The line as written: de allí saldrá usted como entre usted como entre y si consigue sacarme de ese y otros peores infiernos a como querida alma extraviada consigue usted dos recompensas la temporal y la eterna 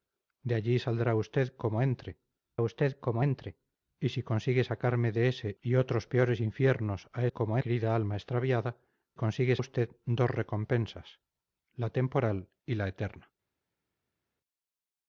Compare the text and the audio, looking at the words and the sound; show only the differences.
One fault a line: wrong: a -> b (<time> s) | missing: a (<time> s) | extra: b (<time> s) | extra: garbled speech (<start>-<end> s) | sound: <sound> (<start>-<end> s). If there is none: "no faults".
no faults